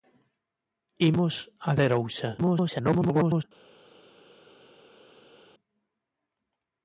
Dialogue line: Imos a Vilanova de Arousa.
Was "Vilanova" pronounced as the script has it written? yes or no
no